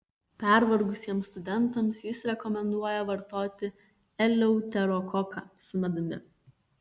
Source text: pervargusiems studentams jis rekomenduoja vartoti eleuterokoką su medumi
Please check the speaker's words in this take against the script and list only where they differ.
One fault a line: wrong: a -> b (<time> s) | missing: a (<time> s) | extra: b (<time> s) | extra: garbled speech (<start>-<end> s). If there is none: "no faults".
no faults